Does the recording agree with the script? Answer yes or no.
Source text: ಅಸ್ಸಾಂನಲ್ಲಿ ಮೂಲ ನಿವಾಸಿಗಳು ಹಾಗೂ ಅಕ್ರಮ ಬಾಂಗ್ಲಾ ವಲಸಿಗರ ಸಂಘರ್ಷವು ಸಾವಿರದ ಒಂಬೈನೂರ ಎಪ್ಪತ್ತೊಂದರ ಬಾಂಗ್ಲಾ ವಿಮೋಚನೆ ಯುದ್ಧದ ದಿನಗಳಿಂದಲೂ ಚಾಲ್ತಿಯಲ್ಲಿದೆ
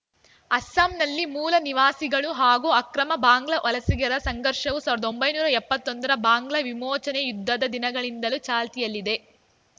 yes